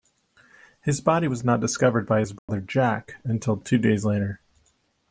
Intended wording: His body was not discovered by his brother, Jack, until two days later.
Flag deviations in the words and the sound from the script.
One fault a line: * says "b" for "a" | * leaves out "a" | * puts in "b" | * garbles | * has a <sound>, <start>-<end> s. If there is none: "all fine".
* has a dropout, 2.4-2.5 s